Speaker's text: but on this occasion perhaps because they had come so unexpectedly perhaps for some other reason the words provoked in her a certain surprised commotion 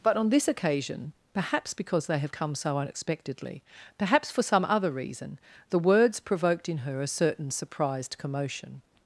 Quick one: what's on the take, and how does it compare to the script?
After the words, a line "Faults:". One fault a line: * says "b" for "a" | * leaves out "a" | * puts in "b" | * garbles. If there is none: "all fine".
but on this occasion perhaps because they have come so unexpectedly perhaps for some other reason the words provoked in her a certain surprised commotion
Faults:
* says "have" for "had"